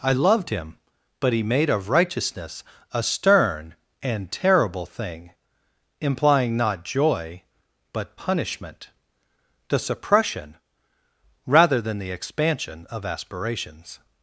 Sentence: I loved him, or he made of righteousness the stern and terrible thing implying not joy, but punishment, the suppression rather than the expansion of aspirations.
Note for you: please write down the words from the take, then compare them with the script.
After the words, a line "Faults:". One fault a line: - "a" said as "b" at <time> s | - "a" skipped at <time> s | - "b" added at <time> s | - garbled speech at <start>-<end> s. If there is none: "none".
I loved him, but he made of righteousness a stern and terrible thing implying not joy, but punishment, the suppression rather than the expansion of aspirations.
Faults:
- "or" said as "but" at 1.2 s
- "the" said as "a" at 2.9 s